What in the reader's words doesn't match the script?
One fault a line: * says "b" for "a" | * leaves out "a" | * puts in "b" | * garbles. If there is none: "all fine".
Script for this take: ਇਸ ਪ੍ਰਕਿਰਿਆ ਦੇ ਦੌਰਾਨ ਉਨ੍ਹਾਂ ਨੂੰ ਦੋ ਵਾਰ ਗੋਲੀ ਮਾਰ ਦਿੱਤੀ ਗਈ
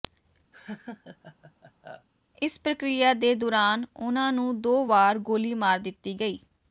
all fine